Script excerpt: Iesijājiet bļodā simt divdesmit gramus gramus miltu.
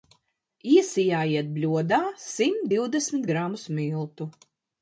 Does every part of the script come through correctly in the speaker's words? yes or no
no